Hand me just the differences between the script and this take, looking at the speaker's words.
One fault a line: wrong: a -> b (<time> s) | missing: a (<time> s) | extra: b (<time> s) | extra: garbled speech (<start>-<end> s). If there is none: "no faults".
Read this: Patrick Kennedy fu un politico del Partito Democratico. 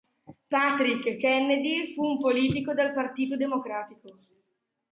no faults